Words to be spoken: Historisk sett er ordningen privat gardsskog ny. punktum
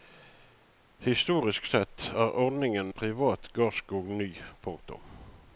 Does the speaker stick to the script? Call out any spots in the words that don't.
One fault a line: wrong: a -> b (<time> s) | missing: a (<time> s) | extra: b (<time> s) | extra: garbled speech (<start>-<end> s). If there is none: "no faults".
no faults